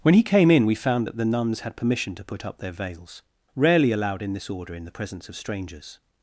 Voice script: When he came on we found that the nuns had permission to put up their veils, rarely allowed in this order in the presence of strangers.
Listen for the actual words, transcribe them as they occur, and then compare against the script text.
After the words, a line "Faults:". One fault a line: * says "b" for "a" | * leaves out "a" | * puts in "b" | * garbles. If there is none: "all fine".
When he came in we found that the nuns had permission to put up their veils, rarely allowed in this order in the presence of strangers.
Faults:
* says "in" for "on"